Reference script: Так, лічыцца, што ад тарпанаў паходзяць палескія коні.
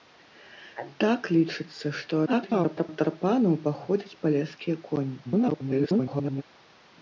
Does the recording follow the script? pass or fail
fail